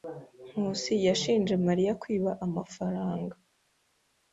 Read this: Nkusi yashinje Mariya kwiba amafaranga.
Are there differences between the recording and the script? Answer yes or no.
no